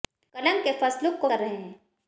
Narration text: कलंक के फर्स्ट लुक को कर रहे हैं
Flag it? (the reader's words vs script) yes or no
no